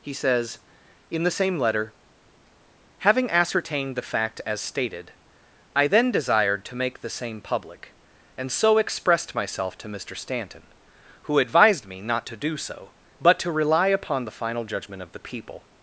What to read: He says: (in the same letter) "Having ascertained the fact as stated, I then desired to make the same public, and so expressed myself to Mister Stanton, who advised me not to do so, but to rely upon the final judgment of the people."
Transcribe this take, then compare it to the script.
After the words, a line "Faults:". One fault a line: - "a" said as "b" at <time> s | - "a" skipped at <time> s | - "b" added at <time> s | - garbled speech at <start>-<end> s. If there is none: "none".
He says: (in the same letter) "Having ascertained the fact as stated, I then desired to make the same public, and so expressed myself to Mister Stanton, who advised me not to do so, but to rely upon the final judgment of the people."
Faults:
none